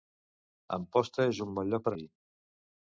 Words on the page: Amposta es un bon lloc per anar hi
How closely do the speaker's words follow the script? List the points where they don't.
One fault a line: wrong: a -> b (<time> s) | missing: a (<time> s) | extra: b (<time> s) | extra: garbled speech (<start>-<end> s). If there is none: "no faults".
missing: anar (2.0 s)